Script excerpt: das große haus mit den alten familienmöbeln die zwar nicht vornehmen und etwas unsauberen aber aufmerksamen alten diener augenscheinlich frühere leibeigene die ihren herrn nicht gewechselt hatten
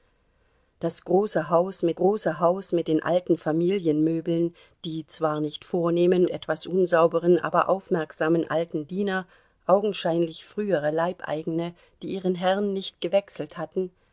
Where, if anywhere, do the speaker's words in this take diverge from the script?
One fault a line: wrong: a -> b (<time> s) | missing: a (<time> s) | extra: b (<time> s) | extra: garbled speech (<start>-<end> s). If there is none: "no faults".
extra: große haus mit (2.0 s)
missing: und (6.3 s)